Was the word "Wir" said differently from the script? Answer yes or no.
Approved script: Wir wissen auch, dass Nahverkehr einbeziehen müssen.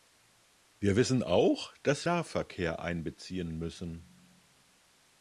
no